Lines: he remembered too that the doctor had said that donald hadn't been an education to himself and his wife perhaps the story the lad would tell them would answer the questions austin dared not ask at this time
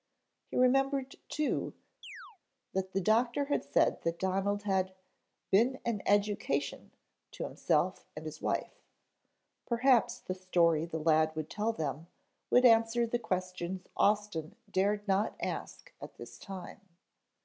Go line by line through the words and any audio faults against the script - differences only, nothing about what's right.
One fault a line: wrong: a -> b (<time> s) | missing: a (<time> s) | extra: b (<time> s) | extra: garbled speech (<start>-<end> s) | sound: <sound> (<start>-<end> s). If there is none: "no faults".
sound: chirp (2.0-2.4 s)
wrong: hadn't -> had (4.6 s)